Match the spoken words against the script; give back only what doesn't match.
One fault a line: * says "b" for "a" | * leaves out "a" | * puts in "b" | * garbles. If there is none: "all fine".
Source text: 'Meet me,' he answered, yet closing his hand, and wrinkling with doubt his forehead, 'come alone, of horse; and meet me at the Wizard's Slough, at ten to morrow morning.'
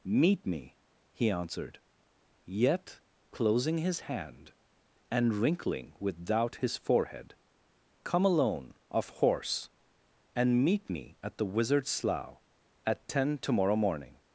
all fine